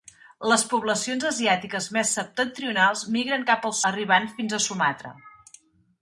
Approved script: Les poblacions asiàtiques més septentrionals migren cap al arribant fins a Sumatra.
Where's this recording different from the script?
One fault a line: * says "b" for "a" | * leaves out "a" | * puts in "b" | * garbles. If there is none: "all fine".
all fine